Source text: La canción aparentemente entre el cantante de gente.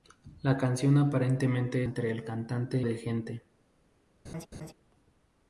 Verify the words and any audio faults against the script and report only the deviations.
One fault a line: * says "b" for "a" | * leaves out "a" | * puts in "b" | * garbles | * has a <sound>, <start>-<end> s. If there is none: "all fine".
* has a laugh, 4.2-4.7 s